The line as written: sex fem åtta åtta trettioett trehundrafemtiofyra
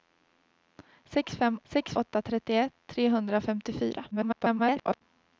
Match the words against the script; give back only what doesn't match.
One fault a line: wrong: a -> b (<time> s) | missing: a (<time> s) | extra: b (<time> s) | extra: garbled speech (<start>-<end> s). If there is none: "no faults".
wrong: åtta -> sex (1.6 s)
extra: garbled speech (4.1-5.0 s)